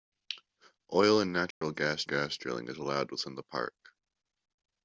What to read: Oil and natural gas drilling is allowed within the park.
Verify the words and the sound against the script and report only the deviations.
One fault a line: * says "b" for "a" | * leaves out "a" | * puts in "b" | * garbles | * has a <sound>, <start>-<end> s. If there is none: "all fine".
* has a dropout, 1.5-1.6 s
* puts in "gas"